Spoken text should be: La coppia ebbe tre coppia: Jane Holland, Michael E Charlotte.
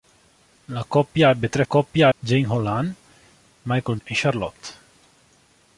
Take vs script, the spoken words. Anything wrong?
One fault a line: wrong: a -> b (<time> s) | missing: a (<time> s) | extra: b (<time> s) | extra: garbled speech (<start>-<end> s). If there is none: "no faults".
no faults